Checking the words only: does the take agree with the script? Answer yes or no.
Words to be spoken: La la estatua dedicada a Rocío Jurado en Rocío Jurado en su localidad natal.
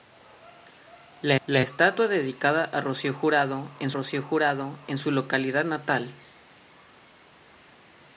yes